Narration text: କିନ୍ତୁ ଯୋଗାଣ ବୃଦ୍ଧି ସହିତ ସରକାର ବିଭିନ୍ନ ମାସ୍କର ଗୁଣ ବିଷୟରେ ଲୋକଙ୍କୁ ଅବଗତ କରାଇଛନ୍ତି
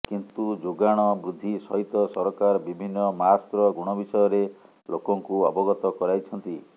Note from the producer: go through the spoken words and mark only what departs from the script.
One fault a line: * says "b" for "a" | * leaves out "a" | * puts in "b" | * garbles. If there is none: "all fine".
all fine